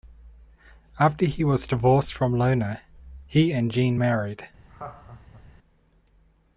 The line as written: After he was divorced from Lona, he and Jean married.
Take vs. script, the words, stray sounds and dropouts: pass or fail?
fail